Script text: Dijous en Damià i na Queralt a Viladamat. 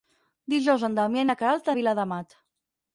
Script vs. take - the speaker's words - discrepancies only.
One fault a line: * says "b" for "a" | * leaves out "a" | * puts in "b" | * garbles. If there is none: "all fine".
all fine